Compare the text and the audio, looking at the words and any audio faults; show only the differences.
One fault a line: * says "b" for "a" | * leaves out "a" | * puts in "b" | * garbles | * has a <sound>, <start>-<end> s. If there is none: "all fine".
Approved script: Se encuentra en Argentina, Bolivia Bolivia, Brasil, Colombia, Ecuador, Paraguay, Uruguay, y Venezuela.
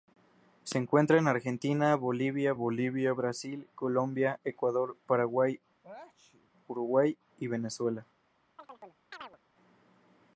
* has a sneeze, 5.8-6.5 s
* has a chirp, 8.6-9.4 s